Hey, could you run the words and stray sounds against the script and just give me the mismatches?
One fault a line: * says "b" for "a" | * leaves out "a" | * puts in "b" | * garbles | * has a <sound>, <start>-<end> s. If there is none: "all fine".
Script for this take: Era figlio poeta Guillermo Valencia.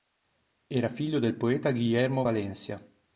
* puts in "del"